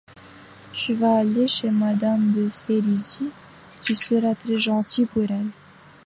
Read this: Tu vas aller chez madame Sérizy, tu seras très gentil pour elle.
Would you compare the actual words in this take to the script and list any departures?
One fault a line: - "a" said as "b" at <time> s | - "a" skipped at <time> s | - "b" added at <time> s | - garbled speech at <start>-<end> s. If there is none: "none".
- "de" added at 2.3 s